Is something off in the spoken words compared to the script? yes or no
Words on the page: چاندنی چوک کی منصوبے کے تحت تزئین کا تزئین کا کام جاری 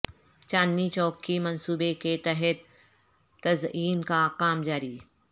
yes